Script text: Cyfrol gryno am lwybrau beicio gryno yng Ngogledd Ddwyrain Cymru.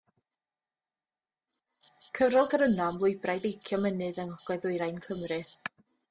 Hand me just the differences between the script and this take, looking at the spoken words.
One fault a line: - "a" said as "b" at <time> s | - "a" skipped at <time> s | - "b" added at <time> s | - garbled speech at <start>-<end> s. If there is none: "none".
- "gryno" said as "mynydd" at 3.9 s